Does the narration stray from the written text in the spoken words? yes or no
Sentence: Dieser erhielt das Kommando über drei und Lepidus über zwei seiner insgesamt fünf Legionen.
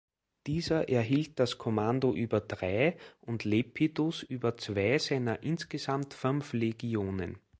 no